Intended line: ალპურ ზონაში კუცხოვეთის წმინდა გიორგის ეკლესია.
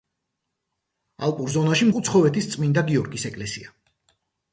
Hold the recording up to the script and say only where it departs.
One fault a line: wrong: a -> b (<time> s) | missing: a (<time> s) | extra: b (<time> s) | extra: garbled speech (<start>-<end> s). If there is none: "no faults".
no faults